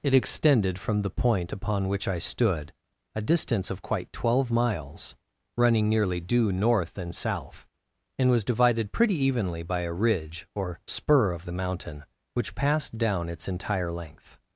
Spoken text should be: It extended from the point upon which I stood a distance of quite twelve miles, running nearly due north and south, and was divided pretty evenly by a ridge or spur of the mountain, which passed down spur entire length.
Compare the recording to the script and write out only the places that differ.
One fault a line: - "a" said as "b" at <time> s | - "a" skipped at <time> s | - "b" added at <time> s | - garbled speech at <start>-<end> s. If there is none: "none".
- "spur" said as "its" at 13.3 s